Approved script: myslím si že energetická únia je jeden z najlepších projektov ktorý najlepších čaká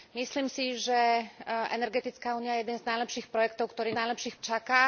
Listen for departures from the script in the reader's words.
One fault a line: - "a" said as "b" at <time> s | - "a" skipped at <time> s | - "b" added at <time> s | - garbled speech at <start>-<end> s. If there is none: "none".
none